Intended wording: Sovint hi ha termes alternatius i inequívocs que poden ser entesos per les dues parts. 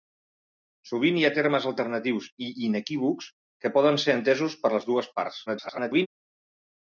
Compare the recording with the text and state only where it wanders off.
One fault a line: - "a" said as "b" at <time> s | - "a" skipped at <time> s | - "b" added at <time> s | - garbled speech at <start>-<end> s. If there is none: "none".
- garbled speech at 5.5-6.1 s